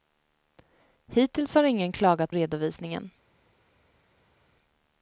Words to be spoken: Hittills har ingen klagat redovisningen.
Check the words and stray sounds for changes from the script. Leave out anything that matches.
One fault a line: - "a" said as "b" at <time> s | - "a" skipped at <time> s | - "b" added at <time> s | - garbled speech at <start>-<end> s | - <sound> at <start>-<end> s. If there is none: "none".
none